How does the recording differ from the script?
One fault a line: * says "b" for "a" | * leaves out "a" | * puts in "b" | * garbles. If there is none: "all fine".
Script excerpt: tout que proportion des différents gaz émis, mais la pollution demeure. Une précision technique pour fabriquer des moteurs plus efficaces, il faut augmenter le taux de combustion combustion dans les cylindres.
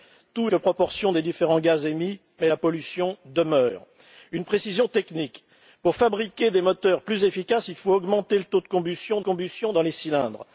all fine